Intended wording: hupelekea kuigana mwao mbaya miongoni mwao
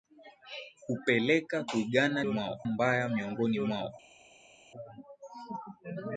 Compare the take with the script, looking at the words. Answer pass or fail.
pass